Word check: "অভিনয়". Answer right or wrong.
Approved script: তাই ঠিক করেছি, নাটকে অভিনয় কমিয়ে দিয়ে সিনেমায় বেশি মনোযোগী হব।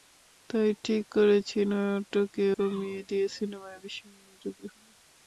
wrong